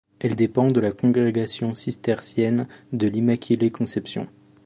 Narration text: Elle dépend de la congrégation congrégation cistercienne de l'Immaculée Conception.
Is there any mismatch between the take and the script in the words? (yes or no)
yes